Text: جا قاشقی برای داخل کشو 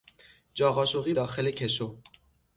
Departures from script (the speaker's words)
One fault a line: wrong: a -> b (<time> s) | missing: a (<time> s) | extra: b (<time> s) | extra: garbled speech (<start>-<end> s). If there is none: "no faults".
missing: برای (1.1 s)